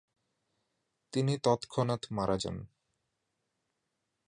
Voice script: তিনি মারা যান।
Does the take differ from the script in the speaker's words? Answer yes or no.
yes